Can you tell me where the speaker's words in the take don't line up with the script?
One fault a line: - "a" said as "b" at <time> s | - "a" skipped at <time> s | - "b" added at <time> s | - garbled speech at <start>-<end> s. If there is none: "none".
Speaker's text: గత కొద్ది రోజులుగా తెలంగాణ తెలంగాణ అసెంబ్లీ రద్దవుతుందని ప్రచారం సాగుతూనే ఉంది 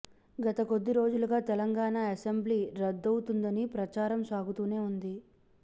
- "తెలంగాణ" skipped at 2.0 s